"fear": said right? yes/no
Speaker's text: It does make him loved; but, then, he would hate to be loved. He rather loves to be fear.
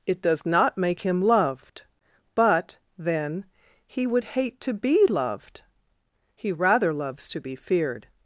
no